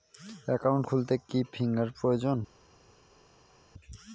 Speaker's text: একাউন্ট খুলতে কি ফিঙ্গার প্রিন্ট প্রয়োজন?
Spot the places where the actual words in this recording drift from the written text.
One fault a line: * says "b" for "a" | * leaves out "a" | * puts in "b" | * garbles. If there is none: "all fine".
* leaves out "প্রিন্ট"